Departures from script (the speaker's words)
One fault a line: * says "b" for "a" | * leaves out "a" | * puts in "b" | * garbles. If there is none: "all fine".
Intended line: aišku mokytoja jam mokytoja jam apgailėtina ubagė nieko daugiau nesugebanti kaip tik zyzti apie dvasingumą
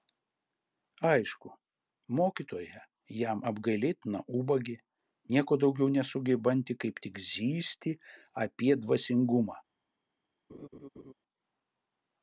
* leaves out "mokytoja jam"